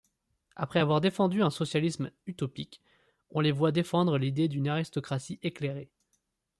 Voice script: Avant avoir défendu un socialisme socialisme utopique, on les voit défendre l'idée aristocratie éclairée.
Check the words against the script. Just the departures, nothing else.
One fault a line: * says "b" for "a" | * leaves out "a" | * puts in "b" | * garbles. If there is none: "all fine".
* says "Après" for "Avant"
* leaves out "socialisme"
* puts in "d'une"